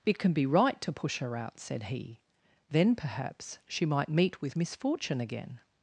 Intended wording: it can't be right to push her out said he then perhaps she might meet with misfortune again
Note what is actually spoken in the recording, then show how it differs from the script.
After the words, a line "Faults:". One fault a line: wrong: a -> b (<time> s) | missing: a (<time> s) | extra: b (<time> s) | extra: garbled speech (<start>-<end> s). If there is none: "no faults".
it can be right to push her out said he then perhaps she might meet with misfortune again
Faults:
wrong: can't -> can (0.2 s)